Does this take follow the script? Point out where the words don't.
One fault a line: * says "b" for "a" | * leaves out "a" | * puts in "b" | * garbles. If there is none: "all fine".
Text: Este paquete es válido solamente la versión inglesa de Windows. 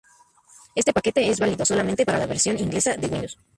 * puts in "para"